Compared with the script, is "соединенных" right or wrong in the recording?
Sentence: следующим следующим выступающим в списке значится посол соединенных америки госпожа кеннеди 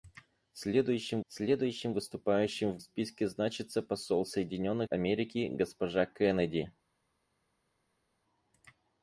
right